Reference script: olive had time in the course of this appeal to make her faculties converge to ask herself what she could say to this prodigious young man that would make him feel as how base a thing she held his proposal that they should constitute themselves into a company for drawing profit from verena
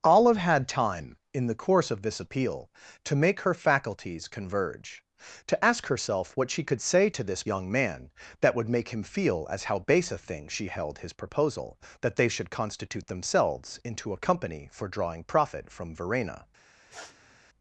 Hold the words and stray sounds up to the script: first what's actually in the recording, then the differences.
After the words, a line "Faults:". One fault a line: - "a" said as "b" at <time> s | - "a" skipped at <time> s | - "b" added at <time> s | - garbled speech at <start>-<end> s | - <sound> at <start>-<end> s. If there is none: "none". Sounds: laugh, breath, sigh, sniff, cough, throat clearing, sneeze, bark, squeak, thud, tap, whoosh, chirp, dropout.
olive had time in the course of this appeal to make her faculties converge to ask herself what she could say to this young man that would make him feel as how base a thing she held his proposal that they should constitute themselves into a company for drawing profit from verena
Faults:
- "prodigious" skipped at 7.4 s
- sniff at 16.9-17.4 s